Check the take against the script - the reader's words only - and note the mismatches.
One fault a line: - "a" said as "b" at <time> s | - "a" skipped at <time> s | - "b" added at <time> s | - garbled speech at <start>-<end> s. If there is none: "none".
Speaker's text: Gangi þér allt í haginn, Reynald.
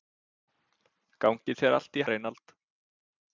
- "haginn" skipped at 2.0 s